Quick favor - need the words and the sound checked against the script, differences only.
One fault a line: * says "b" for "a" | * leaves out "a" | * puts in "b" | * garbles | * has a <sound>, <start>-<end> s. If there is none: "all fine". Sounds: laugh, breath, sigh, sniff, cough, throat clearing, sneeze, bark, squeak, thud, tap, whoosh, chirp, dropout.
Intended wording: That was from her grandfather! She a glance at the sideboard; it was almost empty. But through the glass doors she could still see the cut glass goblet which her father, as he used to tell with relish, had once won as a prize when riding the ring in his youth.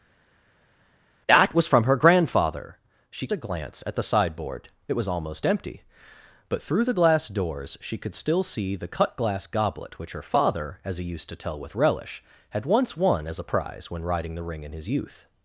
all fine